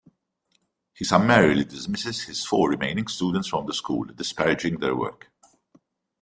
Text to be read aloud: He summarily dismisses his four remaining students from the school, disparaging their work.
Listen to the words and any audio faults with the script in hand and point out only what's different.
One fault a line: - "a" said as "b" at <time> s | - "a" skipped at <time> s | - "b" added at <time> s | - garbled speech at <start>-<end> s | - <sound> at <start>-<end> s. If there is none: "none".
none